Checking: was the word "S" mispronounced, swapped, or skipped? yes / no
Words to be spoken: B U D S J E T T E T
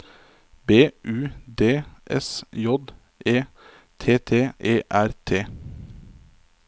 no